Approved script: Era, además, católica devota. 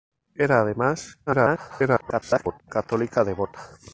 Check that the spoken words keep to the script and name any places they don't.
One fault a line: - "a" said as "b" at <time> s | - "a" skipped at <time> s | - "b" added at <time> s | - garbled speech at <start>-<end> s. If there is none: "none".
- garbled speech at 1.3-2.6 s